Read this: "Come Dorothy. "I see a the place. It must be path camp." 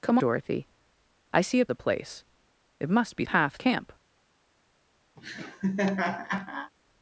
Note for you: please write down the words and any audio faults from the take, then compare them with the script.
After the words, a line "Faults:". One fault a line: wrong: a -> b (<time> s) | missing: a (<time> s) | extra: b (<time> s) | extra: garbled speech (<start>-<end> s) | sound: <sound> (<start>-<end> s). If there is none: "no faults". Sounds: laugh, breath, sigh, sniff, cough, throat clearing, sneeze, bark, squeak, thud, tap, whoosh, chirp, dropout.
"Come Dorothy. "I see a the place. It must be path camp."
Faults:
sound: laugh (5.2-6.7 s)